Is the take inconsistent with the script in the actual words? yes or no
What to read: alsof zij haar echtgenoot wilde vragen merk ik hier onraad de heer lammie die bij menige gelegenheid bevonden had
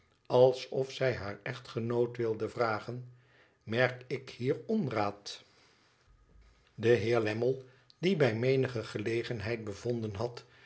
no